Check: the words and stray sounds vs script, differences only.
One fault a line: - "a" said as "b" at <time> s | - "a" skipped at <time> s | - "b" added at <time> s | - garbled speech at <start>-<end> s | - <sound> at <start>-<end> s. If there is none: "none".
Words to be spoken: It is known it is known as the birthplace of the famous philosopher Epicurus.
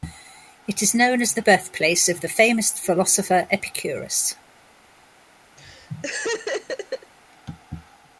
- "it is known" skipped at 1.2 s
- laugh at 5.6-7.1 s